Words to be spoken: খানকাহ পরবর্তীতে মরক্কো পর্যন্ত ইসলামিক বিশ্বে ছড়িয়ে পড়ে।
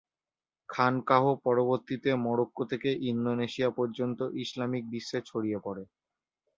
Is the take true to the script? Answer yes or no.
no